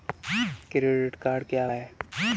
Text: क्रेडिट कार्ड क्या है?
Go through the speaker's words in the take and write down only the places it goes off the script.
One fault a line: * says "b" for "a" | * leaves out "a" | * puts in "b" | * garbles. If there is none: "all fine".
all fine